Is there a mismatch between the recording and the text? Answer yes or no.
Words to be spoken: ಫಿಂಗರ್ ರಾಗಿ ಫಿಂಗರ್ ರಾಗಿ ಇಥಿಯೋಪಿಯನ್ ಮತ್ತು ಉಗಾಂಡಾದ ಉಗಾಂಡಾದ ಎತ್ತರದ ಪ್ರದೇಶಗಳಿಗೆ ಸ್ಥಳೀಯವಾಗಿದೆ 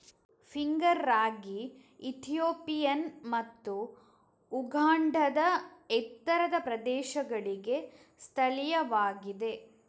yes